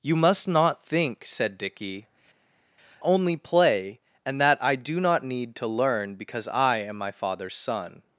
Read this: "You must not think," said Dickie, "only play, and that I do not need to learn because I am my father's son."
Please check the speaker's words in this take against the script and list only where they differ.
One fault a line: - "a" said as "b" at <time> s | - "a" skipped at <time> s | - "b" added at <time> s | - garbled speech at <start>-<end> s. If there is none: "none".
none